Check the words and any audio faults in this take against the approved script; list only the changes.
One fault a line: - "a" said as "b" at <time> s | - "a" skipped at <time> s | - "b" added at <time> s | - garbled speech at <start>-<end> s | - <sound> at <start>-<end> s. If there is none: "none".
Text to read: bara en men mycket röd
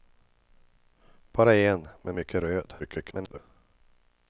- garbled speech at 2.8-3.4 s